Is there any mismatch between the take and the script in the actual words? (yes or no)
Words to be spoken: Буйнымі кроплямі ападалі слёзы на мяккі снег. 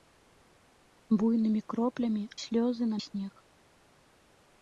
yes